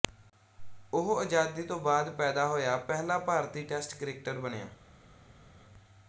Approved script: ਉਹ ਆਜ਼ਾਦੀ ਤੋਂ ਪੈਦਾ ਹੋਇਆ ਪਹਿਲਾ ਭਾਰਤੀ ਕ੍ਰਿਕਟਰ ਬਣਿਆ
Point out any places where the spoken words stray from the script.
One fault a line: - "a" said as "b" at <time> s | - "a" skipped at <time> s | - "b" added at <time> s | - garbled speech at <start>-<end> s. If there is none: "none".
- "ਬਾਅਦ" added at 1.8 s
- "ਟੈਸਟ" added at 3.6 s